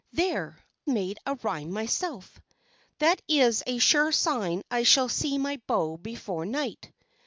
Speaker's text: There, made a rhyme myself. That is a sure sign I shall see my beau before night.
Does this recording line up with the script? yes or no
yes